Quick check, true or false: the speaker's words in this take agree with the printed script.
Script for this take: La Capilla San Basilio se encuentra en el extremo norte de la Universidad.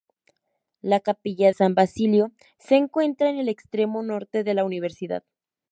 true